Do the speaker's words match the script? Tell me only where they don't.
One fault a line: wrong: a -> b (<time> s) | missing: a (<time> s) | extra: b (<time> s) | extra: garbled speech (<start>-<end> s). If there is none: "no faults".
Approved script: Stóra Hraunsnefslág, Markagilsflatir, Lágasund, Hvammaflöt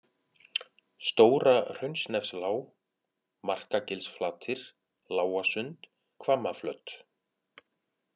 no faults